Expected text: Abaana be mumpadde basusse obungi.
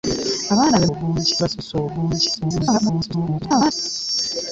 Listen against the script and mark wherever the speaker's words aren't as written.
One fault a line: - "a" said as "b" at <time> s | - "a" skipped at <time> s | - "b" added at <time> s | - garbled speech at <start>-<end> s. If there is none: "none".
- "mumpadde" said as "obungi" at 0.9 s
- garbled speech at 2.3-3.7 s